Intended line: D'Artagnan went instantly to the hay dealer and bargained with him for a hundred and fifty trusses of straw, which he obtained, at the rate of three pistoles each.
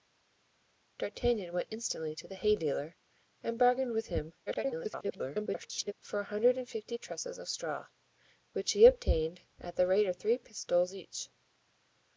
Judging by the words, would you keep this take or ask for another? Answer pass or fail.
fail